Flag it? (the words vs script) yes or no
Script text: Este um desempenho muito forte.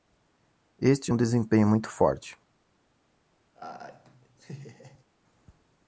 no